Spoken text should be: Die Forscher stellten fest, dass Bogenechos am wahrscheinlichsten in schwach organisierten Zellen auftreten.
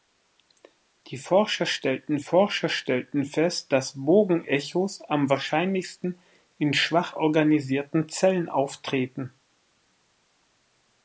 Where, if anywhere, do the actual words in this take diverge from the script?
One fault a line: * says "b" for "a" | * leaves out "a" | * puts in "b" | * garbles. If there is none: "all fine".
* puts in "Forscher stellten"